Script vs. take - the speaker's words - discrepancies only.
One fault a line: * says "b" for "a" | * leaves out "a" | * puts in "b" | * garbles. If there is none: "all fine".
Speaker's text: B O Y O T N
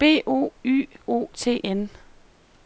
all fine